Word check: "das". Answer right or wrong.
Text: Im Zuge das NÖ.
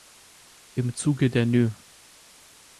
wrong